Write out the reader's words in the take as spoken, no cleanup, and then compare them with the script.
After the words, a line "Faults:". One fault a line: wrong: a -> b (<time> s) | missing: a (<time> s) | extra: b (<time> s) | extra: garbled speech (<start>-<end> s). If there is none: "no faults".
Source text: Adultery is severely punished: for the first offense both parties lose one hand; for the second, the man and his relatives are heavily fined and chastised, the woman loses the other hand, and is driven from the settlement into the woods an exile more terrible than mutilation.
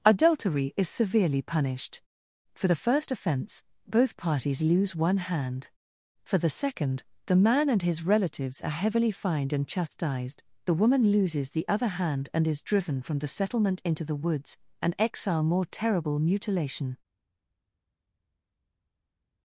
Adultery is severely punished: for the first offense both parties lose one hand; for the second, the man and his relatives are heavily fined and chastised, the woman loses the other hand, and is driven from the settlement into the woods an exile more terrible mutilation.
Faults:
missing: than (16.2 s)